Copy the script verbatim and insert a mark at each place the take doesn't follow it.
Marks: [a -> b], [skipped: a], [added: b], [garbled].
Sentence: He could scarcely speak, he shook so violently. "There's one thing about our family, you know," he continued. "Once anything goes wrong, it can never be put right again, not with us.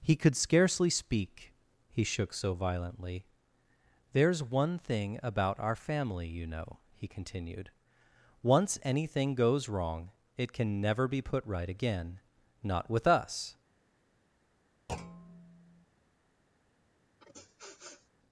He could scarcely speak, he shook so violently. "There's one thing about our family, you know," he continued. "Once anything goes wrong, it can never be put right again, not with us.